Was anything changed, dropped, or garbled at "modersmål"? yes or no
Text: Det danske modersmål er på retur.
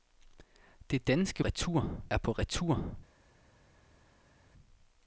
yes